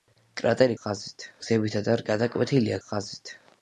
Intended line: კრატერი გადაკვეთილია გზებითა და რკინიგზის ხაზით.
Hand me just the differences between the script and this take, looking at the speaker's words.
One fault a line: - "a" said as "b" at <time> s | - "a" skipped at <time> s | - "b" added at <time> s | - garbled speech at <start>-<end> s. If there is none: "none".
- "გადაკვეთილია" said as "ხაზით" at 0.8 s
- "რკინიგზის" said as "გადაკვეთილია" at 2.1 s